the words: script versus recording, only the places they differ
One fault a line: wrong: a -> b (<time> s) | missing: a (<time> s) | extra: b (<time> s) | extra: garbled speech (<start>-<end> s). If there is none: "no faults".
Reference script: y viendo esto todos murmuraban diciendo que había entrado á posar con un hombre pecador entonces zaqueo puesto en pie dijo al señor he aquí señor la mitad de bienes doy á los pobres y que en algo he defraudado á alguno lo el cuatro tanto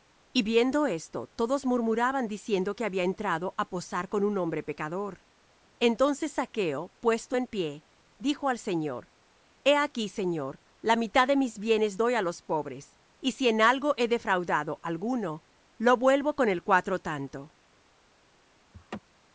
extra: mis (11.4 s)
wrong: que -> si (13.3 s)
extra: vuelvo con (16.0 s)